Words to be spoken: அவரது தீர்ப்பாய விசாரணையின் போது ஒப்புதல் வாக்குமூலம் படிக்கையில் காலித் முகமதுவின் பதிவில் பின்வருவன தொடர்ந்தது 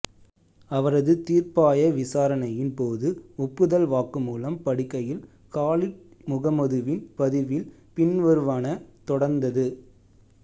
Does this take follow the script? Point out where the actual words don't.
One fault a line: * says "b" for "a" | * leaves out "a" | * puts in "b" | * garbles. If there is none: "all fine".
all fine